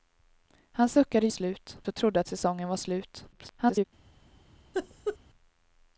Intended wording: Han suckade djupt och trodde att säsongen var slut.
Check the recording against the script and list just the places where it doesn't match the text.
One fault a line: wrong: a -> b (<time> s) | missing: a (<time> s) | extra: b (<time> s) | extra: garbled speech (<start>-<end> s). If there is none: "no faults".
wrong: djupt -> slut (1.3 s)
extra: garbled speech (3.3-3.9 s)